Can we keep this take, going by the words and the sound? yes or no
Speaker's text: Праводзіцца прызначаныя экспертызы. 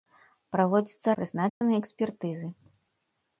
no